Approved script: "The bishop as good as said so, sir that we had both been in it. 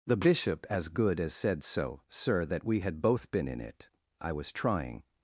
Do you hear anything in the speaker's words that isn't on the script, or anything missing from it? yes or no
yes